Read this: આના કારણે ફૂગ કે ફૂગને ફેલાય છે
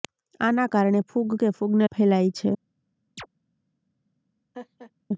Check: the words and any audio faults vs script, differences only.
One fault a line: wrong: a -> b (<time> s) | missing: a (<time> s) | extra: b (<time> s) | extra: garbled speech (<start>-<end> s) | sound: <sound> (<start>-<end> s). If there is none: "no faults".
sound: chirp (3.2-3.3 s)
sound: laugh (4.5-4.9 s)